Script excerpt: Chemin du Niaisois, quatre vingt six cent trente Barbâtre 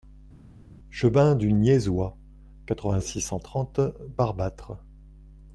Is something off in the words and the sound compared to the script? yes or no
no